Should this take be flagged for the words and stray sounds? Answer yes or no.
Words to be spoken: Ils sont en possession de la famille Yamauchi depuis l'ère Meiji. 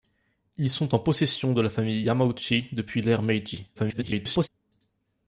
yes